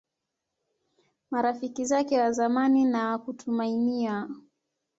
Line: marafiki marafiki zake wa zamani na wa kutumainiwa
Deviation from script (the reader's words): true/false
true